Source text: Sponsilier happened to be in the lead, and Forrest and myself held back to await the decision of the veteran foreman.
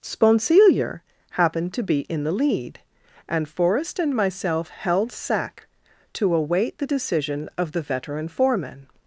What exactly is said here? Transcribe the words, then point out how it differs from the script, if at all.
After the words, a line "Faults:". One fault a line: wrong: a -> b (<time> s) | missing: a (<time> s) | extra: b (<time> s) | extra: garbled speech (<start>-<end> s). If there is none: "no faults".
Sponsilier happened to be in the lead, and Forrest and myself held sack to await the decision of the veteran foreman.
Faults:
wrong: back -> sack (5.1 s)